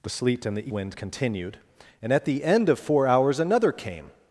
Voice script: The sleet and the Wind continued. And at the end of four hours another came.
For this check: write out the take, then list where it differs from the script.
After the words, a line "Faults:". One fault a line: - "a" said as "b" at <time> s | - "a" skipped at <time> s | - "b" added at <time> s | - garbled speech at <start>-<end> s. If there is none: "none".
The sleet and the Wind continued. And at the end of four hours another came.
Faults:
none